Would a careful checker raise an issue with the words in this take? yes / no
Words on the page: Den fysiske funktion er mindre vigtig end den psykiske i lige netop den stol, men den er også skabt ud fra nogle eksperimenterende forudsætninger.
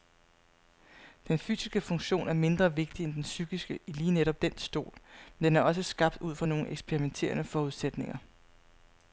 no